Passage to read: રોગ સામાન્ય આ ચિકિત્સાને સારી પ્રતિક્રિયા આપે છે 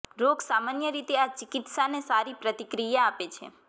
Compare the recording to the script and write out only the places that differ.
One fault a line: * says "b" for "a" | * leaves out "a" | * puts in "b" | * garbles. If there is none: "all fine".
* puts in "રીતે"